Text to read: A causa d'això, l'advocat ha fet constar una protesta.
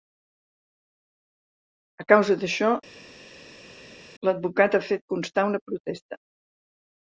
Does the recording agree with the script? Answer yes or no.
yes